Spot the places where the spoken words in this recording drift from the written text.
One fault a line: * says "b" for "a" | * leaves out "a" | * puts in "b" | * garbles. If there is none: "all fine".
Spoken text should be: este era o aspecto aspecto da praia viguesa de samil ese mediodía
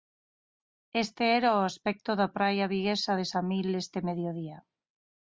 * leaves out "aspecto"
* says "este" for "ese"